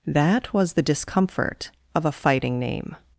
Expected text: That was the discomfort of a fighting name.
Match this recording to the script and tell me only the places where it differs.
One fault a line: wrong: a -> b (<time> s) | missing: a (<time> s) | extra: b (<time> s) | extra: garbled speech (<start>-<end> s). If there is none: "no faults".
no faults